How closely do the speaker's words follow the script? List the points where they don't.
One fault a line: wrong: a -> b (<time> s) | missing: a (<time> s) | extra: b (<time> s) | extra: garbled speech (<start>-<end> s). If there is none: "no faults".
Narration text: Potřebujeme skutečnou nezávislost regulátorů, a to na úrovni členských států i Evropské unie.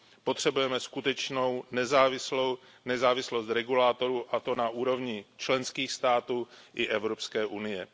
no faults